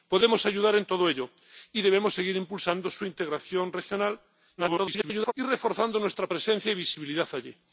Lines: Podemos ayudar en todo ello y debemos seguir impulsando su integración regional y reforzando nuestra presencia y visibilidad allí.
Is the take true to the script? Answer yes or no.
no